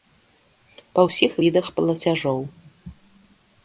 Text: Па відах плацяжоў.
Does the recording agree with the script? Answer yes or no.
no